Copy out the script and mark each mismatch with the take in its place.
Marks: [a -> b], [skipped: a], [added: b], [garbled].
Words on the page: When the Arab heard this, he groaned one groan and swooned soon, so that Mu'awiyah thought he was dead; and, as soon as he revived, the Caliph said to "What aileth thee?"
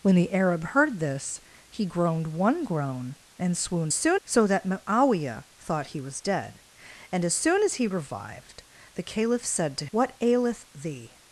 When the Arab heard this, he groaned one groan and swooned soon, so that Mu'awiyah thought he was dead; and, as soon as he revived, the Caliph said to "What aileth thee?"